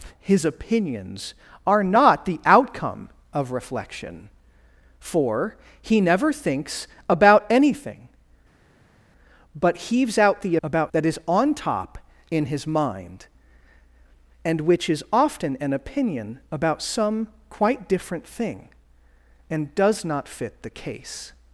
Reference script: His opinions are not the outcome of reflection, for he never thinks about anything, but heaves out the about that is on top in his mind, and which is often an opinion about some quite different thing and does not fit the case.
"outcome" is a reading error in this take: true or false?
false